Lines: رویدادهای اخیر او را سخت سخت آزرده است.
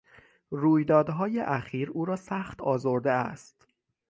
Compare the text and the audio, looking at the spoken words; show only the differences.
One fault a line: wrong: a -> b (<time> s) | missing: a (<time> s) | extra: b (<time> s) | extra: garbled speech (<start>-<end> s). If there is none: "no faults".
missing: سخت (2.6 s)